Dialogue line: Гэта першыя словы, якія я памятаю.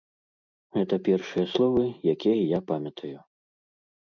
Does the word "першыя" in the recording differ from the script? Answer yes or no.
no